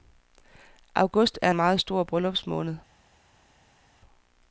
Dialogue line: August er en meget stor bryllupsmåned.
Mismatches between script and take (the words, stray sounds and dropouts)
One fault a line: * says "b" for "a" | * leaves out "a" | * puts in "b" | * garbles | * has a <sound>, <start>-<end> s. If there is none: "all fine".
all fine